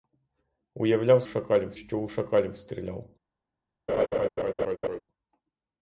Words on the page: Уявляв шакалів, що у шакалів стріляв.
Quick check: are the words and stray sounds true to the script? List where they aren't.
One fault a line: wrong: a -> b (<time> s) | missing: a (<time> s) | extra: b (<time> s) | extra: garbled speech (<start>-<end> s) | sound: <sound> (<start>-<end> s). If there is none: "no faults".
sound: laugh (3.9-5.0 s)